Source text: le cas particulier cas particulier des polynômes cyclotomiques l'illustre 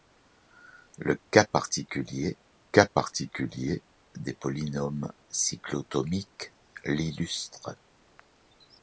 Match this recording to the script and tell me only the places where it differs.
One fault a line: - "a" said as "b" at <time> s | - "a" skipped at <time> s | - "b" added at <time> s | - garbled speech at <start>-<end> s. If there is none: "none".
none